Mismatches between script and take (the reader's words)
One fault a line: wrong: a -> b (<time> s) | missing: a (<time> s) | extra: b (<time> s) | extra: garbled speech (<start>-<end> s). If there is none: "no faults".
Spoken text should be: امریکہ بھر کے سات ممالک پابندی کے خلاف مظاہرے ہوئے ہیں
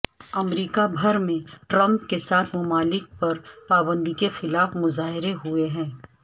extra: میں ٹرمپ (1.2 s)
extra: پر (3.2 s)